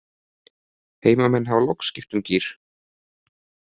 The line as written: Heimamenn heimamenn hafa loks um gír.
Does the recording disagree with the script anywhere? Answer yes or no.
yes